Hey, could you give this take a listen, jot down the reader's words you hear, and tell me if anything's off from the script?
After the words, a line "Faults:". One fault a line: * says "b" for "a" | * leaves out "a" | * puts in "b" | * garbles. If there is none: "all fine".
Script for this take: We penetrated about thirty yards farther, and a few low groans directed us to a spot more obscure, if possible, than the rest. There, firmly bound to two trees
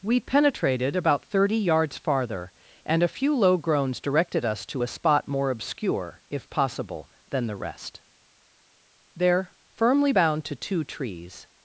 We penetrated about thirty yards farther, and a few low groans directed us to a spot more obscure, if possible, than the rest. There, firmly bound to two trees
Faults:
all fine